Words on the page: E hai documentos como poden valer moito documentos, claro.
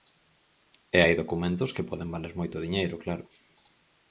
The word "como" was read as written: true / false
false